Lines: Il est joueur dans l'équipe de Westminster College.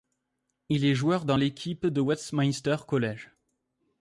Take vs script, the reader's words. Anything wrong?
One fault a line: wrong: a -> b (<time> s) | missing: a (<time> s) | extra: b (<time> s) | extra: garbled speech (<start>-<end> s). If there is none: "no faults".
no faults